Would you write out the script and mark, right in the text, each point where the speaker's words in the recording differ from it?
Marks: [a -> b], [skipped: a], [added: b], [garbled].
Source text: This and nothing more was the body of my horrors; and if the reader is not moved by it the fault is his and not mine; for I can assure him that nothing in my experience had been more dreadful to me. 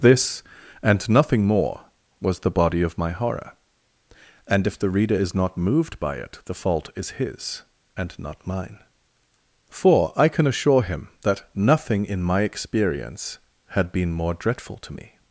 This and nothing more was the body of my [horrors; -> horror] and if the reader is not moved by it the fault is his and not mine; for I can assure him that nothing in my experience had been more dreadful to me.